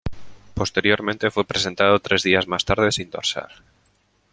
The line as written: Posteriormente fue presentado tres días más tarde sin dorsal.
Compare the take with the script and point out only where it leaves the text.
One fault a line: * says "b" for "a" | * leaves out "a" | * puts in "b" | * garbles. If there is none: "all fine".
all fine